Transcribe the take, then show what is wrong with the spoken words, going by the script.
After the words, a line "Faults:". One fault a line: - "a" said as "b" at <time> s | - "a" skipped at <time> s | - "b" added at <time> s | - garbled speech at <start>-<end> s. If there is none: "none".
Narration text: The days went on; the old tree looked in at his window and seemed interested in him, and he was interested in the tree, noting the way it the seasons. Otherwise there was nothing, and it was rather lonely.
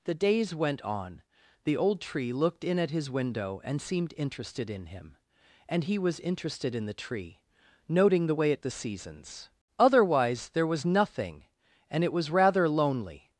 The days went on; the old tree looked in at his window and seemed interested in him, and he was interested in the tree, noting the way it the seasons. Otherwise there was nothing, and it was rather lonely.
Faults:
none